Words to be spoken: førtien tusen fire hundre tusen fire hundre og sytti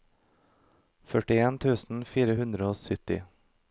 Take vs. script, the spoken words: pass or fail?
fail